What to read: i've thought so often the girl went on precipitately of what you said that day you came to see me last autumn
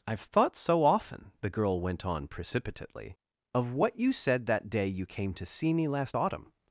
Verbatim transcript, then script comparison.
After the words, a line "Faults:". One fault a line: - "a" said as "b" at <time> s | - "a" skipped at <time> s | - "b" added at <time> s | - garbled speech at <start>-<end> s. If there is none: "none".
i've thought so often the girl went on precipitately of what you said that day you came to see me last autumn
Faults:
none